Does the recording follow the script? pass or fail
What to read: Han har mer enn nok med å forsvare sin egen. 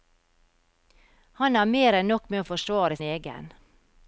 fail